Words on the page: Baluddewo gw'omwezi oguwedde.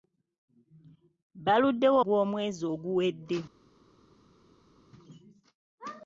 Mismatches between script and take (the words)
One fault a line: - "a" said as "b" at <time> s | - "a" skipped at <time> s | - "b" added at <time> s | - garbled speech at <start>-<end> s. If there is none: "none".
none